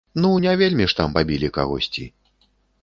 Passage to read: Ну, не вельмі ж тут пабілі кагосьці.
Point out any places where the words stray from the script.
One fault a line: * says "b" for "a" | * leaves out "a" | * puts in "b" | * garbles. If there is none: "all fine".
* says "там" for "тут"